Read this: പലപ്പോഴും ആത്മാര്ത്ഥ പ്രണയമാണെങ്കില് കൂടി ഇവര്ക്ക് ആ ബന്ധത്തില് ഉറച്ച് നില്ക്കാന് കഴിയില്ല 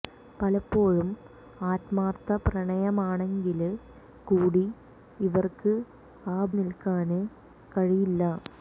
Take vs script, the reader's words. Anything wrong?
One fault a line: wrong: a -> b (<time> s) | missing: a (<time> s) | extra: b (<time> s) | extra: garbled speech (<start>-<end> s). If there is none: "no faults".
missing: ബന്ധത്തില് ഉറച്ച് (6.5 s)